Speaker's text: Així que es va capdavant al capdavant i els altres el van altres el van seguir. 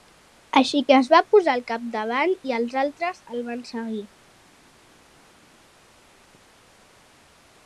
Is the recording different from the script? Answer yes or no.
yes